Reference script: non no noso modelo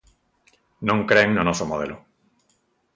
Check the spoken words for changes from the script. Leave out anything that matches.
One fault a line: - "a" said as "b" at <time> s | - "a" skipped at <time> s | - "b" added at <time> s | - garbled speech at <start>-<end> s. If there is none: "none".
- "cren" added at 1.1 s